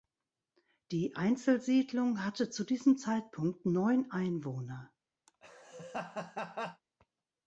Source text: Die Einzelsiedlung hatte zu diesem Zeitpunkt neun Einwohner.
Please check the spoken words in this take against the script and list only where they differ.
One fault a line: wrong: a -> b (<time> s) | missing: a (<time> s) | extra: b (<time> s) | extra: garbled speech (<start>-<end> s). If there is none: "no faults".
no faults